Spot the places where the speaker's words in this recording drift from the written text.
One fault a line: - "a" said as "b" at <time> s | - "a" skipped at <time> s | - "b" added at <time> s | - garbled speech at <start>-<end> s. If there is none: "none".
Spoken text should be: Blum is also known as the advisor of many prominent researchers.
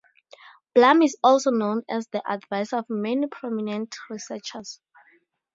none